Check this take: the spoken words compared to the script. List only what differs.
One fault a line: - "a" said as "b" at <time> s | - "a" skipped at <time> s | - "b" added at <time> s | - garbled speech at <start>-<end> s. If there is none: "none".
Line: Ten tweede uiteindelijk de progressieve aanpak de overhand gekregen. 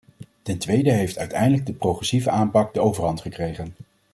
- "heeft" added at 0.9 s